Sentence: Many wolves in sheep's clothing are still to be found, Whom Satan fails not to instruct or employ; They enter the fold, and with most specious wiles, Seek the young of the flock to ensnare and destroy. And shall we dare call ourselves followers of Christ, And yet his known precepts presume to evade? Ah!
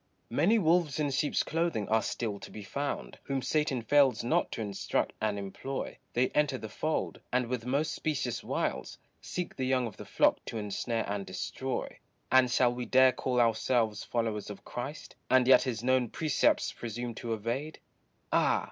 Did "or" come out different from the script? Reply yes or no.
yes